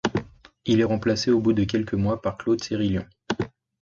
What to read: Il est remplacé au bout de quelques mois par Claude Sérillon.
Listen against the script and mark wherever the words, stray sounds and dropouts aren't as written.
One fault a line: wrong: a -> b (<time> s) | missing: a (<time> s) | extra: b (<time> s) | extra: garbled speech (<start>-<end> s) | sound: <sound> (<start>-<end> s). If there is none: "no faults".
no faults